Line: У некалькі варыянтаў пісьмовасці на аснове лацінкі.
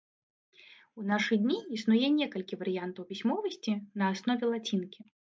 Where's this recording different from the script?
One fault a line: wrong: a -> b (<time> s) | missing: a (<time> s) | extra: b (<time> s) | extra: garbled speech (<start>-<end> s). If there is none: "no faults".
extra: нашы дні існуе (1.1 s)